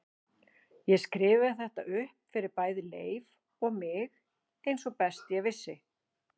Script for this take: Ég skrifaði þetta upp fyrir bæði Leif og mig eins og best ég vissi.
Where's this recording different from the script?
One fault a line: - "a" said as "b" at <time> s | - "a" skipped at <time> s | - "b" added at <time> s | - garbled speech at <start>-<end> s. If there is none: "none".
none